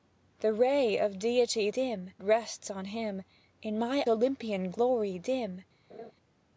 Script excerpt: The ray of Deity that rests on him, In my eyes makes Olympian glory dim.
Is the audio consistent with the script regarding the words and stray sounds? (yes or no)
no